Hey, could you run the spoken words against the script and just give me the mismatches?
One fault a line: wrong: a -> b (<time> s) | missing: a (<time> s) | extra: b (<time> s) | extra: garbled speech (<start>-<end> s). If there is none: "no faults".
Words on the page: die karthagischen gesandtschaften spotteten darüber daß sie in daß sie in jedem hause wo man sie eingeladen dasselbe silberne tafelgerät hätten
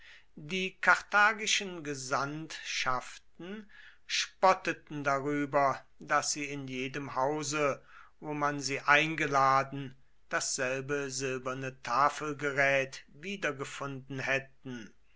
missing: daß sie in (6.7 s)
extra: wiedergefunden (13.1 s)